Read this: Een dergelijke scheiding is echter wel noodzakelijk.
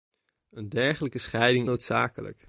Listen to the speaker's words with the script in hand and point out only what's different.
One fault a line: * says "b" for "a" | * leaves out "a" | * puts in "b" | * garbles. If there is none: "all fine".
* leaves out "is echter wel"